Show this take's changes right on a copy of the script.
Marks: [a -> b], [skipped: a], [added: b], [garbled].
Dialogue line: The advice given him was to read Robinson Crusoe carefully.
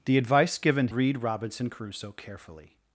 The advice given [skipped: him was to] read Robinson Crusoe carefully.